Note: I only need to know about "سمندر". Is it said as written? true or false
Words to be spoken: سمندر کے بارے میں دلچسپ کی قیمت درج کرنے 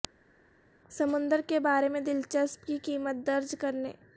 true